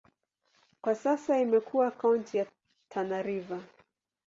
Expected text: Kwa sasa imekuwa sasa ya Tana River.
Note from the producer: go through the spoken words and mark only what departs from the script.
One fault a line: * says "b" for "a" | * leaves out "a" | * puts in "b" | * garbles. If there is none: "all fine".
* says "kaunti" for "sasa"